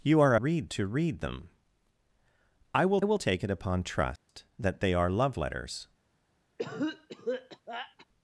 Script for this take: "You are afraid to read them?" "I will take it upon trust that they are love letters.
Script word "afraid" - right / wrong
wrong